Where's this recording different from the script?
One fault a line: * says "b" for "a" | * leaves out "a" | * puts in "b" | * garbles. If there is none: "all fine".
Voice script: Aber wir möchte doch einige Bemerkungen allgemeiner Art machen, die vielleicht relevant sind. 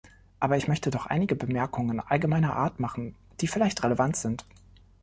* says "ich" for "wir"